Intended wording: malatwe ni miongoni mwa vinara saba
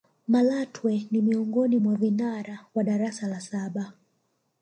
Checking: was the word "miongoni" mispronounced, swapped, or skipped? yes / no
no